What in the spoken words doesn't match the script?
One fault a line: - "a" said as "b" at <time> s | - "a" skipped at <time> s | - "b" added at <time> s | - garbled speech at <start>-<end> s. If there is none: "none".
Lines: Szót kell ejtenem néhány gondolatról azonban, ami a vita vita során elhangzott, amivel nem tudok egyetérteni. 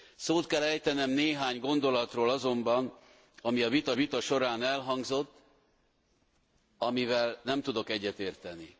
none